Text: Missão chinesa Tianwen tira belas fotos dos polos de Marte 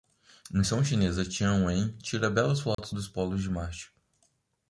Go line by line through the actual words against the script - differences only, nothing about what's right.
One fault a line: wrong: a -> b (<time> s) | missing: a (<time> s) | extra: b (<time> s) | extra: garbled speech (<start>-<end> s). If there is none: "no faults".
no faults